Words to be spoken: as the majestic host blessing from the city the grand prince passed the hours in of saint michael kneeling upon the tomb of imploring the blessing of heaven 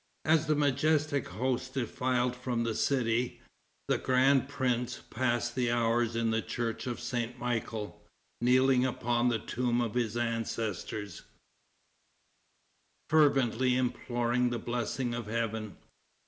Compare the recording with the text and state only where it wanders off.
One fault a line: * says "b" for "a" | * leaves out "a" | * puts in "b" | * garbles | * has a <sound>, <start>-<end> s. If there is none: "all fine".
* says "defiled" for "blessing"
* puts in "the church"
* puts in "his ancestors fervently"